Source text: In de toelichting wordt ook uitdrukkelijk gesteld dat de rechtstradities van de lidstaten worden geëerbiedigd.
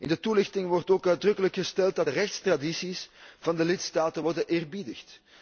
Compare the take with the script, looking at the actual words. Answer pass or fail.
pass